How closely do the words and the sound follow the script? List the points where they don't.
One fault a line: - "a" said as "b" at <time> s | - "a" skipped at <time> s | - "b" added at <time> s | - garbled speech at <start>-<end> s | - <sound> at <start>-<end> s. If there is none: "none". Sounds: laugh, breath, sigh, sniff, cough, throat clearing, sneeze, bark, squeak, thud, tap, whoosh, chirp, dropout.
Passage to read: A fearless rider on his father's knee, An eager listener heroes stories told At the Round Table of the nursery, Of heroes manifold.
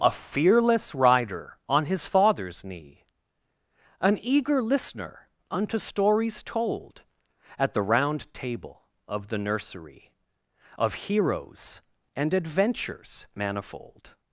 - "heroes" said as "unto" at 5.5 s
- "and adventures" added at 12.1 s